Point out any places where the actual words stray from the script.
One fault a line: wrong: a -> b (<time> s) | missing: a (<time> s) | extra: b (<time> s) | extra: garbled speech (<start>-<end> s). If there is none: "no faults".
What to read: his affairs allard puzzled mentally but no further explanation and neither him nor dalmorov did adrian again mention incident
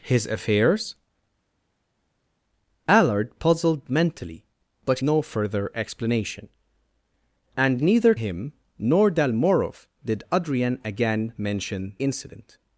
no faults